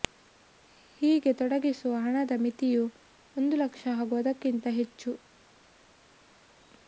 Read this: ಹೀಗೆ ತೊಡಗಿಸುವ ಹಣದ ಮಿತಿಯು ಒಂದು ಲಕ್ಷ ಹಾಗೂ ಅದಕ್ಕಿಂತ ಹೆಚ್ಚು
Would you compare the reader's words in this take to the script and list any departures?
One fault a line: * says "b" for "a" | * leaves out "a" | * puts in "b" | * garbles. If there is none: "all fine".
all fine